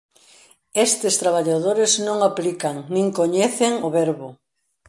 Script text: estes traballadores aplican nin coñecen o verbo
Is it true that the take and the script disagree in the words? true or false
true